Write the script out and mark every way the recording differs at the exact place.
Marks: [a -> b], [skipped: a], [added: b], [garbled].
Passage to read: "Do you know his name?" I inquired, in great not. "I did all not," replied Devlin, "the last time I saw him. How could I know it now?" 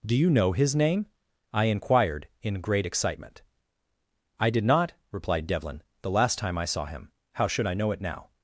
"Do you know his name?" I inquired, in great [not. -> excitement] "I did [skipped: all] not," replied Devlin, "the last time I saw him. How [could -> should] I know it now?"